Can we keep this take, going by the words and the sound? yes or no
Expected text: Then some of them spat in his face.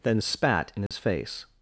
no